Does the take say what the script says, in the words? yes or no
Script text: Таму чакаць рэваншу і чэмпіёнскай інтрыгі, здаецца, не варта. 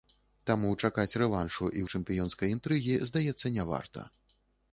yes